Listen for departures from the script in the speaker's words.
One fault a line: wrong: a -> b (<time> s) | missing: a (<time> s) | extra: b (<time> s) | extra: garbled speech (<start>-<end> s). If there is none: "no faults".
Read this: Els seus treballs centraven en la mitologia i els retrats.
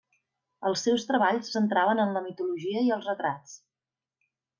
no faults